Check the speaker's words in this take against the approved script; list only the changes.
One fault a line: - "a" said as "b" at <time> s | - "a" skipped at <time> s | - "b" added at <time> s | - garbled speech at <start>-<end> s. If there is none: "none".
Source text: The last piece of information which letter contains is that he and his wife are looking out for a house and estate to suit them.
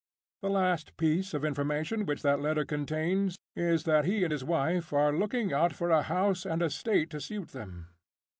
- "that" added at 2.2 s